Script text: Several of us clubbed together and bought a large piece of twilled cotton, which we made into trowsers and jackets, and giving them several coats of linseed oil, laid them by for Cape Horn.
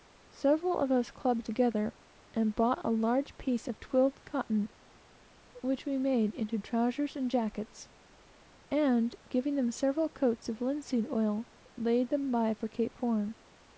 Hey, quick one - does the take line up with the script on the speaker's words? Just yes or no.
yes